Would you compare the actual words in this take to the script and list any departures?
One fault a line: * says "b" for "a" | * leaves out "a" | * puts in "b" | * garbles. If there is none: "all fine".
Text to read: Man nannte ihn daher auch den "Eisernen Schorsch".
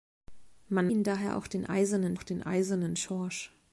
* leaves out "nannte"
* puts in "auch den Eisernen"